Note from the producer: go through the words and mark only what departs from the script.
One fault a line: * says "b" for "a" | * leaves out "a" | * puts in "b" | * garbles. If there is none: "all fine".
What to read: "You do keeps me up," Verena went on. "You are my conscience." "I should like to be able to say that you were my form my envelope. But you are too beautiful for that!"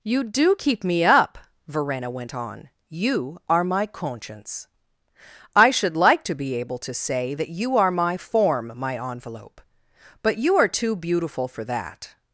* says "keep" for "keeps"
* says "are" for "were"